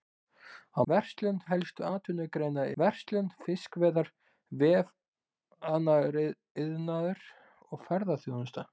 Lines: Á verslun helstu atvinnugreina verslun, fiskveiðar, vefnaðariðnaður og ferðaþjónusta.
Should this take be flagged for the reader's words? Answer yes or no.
no